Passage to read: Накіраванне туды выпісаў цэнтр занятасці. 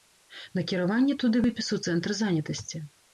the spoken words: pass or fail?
pass